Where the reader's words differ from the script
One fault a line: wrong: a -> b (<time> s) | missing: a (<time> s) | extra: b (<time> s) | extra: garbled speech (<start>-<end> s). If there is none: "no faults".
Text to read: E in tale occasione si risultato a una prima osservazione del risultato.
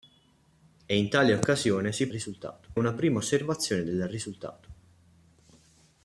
no faults